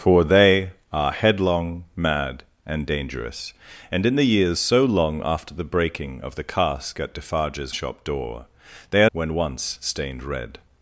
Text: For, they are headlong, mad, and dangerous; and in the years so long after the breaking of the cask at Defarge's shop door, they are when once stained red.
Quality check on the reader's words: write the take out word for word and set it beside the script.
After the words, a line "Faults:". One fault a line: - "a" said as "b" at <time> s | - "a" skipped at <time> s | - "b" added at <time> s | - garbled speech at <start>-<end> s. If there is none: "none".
For, they are headlong, mad, and dangerous; and in the years so long after the breaking of the cask at Defarge's shop door, they are when once stained red.
Faults:
none